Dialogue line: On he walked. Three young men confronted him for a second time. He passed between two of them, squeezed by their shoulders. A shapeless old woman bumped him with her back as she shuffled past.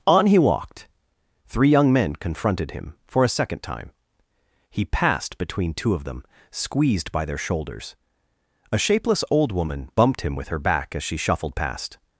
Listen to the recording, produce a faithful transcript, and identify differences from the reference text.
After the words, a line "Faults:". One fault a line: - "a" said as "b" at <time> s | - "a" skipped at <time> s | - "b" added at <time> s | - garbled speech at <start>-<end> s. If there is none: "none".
On he walked. Three young men confronted him for a second time. He passed between two of them, squeezed by their shoulders. A shapeless old woman bumped him with her back as she shuffled past.
Faults:
none